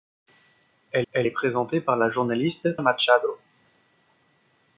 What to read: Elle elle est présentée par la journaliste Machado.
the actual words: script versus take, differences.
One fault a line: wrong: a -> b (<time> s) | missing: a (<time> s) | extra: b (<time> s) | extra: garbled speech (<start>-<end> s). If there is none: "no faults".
no faults